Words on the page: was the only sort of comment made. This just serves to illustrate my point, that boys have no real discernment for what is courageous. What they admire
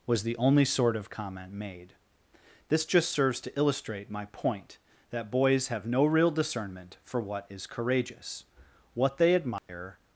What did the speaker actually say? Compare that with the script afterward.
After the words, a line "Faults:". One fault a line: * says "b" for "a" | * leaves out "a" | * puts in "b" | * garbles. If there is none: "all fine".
was the only sort of comment made. This just serves to illustrate my point, that boys have no real discernment for what is courageous. What they admire
Faults:
all fine